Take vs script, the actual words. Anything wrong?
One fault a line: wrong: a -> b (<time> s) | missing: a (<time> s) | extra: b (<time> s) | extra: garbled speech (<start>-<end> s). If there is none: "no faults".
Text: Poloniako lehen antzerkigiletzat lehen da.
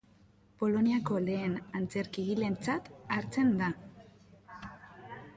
wrong: lehen -> hartzen (3.2 s)